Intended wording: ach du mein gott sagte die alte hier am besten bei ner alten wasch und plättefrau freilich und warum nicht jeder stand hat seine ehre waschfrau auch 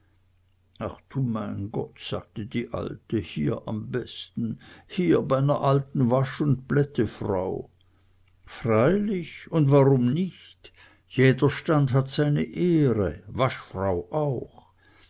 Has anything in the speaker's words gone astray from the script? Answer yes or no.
yes